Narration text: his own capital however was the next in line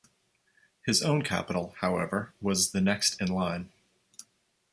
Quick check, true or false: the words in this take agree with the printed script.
true